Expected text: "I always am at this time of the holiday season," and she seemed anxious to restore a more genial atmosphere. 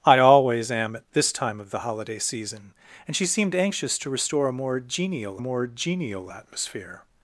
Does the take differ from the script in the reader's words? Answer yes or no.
yes